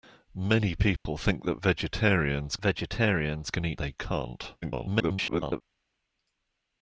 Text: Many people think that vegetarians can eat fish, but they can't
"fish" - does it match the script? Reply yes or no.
no